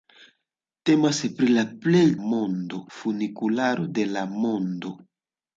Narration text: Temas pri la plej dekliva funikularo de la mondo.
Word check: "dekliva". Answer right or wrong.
wrong